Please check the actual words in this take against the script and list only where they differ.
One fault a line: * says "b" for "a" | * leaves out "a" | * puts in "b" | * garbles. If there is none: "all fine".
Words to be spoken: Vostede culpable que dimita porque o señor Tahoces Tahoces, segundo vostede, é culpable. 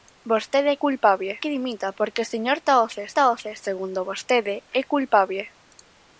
all fine